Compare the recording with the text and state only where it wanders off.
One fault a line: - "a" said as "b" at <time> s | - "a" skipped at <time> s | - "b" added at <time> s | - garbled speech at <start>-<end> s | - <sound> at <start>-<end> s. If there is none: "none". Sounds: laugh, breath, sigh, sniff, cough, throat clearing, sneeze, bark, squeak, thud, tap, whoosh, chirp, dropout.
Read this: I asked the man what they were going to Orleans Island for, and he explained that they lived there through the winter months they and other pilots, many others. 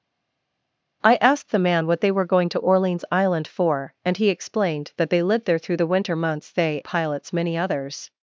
- "and other" skipped at 6.8 s